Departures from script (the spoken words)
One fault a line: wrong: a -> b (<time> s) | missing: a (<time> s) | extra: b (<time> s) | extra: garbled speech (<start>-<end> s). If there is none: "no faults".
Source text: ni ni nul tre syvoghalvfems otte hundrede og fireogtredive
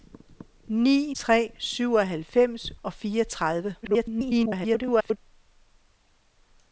missing: ni nul (1.1 s)
missing: otte hundrede (2.7 s)
extra: garbled speech (3.8-5.2 s)